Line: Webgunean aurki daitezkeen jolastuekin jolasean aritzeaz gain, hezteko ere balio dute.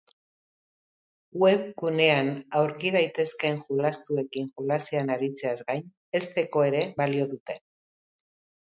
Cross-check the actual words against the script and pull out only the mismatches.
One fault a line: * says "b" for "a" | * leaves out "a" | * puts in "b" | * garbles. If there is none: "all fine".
all fine